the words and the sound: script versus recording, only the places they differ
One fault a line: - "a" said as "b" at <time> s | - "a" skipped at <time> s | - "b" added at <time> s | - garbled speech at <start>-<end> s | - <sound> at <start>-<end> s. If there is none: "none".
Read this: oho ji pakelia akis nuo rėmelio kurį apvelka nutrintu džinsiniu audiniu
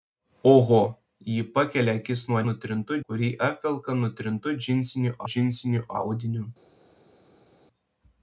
- "rėmelio" said as "nutrintu" at 2.5 s
- "džinsiniu" added at 5.3 s